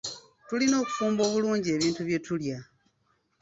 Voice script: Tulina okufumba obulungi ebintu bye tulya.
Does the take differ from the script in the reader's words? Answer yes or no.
no